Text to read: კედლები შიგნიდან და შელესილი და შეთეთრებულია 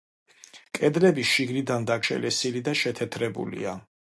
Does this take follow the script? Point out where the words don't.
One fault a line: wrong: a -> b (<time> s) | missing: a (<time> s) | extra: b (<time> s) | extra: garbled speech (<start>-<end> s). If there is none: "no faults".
no faults